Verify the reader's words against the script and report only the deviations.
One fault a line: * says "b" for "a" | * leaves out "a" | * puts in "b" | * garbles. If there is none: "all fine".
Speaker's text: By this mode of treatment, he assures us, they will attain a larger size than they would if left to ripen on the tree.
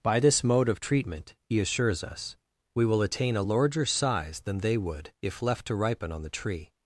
* says "we" for "they"